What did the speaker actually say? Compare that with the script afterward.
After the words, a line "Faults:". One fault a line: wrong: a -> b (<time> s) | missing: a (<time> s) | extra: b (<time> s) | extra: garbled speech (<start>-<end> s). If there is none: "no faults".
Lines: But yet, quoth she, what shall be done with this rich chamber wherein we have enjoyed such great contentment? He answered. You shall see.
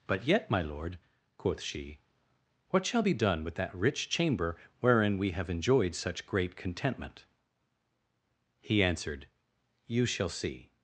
But yet, my lord, quoth she, what shall be done with that rich chamber wherein we have enjoyed such great contentment? He answered. You shall see.
Faults:
extra: my lord (0.5 s)
wrong: this -> that (3.6 s)